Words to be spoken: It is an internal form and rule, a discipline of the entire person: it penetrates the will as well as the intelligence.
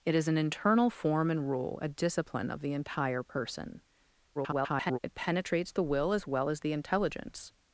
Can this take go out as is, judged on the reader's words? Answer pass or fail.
fail